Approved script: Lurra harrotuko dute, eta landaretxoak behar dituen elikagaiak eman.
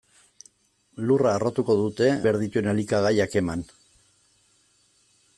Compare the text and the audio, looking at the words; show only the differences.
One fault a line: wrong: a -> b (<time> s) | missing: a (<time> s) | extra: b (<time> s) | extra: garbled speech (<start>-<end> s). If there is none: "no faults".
missing: eta landaretxoak (2.1 s)